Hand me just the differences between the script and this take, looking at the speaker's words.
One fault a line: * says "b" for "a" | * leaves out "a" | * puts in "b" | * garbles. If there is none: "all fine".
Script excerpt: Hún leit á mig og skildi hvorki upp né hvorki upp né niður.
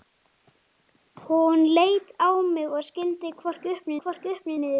all fine